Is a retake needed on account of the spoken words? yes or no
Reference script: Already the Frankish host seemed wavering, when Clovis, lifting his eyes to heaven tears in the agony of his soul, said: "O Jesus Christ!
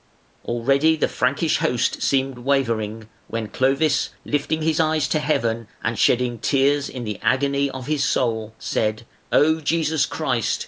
yes